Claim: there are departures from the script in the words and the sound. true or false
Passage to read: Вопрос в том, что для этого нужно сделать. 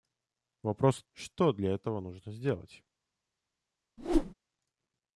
true